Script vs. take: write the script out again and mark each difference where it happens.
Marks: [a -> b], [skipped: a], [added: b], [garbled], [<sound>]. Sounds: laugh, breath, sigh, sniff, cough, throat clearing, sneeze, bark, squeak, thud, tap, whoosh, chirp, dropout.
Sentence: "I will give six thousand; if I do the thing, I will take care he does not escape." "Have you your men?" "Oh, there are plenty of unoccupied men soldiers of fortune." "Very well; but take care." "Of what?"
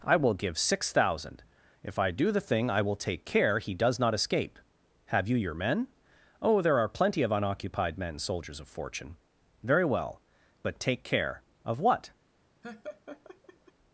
"I will give six thousand; if I do the thing, I will take care he does not escape." "Have you your men?" "Oh, there are plenty of unoccupied men soldiers of fortune." "Very well; but take care." "Of what?" [laugh]